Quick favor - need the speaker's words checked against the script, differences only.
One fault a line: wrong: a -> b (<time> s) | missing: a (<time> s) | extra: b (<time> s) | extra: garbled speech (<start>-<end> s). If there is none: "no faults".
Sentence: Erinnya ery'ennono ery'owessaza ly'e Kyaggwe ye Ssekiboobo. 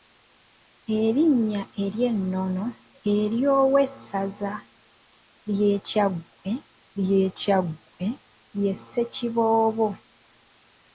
extra: ly'e Kyaggwe (7.0 s)